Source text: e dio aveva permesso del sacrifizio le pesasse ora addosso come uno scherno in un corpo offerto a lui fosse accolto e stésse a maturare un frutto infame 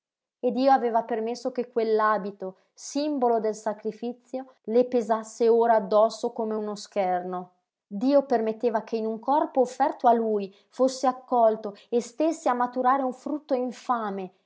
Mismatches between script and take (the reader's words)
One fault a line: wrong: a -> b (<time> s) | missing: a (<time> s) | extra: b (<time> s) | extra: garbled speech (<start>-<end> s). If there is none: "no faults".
extra: che quell'abito simbolo (1.5 s)
extra: dio permetteva che (7.9 s)